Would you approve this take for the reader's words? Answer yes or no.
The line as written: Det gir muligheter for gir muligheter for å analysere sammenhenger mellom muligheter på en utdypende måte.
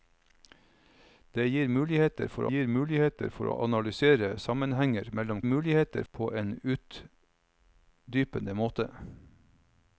yes